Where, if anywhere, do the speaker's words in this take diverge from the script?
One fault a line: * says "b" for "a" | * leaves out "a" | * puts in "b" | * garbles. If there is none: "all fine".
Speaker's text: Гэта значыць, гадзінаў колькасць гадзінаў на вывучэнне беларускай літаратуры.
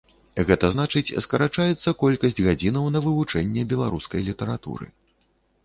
* says "скарачаецца" for "гадзінаў"